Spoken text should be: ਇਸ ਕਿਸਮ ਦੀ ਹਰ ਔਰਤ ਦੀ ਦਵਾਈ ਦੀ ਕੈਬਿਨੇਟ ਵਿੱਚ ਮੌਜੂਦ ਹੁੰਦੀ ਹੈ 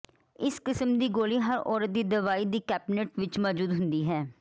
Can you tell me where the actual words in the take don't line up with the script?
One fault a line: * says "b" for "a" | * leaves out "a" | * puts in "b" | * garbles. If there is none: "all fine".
* puts in "ਗੋਲੀ"